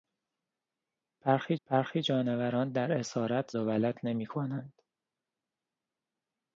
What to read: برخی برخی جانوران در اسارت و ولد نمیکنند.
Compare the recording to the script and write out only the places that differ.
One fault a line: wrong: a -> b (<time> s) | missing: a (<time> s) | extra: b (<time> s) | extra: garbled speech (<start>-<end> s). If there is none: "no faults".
no faults